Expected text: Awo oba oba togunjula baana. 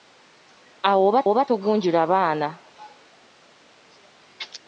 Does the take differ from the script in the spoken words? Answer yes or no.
no